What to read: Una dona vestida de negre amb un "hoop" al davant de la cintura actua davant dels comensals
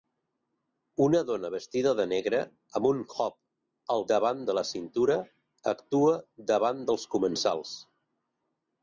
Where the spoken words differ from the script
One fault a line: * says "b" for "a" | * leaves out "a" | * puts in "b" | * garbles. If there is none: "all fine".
all fine